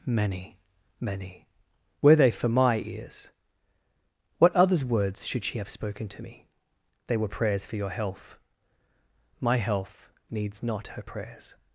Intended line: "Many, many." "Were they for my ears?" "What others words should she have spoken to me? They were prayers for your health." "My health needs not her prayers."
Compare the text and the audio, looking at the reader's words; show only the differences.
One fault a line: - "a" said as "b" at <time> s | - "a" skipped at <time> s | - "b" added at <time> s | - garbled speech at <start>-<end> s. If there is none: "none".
none